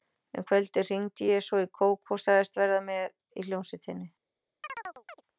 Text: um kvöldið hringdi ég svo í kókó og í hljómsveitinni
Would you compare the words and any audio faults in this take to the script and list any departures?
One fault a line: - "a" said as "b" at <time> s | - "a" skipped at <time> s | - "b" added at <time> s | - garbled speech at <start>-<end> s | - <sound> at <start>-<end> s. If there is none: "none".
- "sagðist verða með" added at 2.3 s
- chirp at 4.6-5.2 s